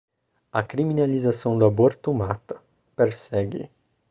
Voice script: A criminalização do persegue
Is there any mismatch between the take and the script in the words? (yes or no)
yes